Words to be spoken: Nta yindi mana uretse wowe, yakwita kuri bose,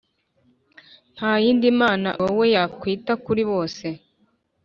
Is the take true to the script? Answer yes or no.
no